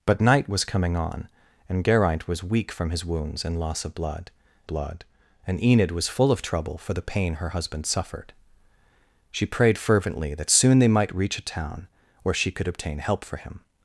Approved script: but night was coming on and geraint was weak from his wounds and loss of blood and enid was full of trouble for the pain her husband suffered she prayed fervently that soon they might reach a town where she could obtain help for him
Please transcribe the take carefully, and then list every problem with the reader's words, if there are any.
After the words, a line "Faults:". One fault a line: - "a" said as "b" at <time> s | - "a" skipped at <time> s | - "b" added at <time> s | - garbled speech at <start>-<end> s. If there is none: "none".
but night was coming on and geraint was weak from his wounds and loss of blood blood and enid was full of trouble for the pain her husband suffered she prayed fervently that soon they might reach a town where she could obtain help for him
Faults:
- "blood" added at 4.7 s